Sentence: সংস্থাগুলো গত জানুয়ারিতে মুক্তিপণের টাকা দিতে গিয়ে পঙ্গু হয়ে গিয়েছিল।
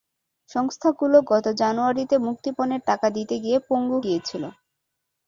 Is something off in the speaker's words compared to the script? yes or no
yes